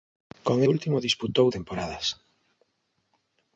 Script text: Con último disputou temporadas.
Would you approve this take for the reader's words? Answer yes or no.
yes